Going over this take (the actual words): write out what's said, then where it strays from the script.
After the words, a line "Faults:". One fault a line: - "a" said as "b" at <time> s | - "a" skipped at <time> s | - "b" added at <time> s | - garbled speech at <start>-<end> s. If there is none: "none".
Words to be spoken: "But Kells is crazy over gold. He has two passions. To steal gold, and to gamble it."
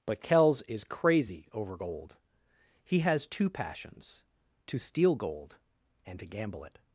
"But Kells is crazy over gold. He has two passions. To steal gold, and to gamble it."
Faults:
none